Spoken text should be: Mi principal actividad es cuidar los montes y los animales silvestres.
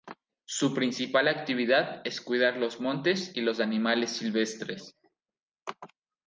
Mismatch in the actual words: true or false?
true